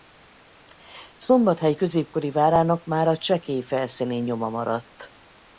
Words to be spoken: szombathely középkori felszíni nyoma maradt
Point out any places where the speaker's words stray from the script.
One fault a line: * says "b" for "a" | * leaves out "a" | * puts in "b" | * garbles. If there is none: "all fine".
* puts in "várának mára csekély"